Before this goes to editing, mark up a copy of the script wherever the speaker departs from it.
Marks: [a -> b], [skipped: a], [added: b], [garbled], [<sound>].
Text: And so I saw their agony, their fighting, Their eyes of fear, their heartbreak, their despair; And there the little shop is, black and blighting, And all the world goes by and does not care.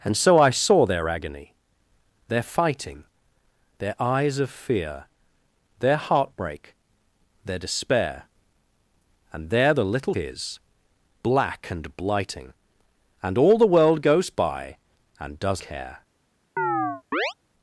And so I saw their agony, their fighting, Their eyes of fear, their heartbreak, their despair; And there the little [skipped: shop] is, black and blighting, And all the world goes by and does [skipped: not] care. [chirp]